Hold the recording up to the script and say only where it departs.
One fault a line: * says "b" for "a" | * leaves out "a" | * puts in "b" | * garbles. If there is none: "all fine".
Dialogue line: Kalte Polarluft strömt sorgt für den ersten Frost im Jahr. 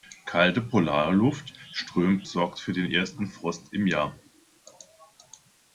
all fine